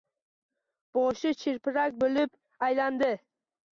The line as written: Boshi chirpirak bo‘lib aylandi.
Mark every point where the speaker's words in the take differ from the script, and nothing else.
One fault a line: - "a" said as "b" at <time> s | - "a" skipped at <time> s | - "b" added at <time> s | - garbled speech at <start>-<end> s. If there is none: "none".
none